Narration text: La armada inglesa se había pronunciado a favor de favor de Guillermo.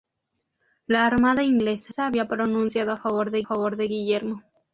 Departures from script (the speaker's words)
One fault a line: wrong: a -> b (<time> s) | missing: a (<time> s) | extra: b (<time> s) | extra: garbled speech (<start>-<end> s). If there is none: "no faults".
no faults